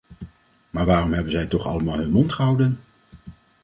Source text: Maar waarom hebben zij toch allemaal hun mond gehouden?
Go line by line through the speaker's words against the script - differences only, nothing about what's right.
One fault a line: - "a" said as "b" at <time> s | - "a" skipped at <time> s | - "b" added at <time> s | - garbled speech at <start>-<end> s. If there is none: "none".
none